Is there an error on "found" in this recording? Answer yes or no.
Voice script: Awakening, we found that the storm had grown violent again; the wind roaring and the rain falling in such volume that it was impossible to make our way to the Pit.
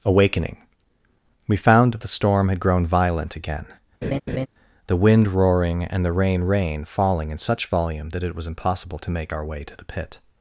no